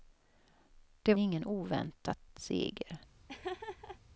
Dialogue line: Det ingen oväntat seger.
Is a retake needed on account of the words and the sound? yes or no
yes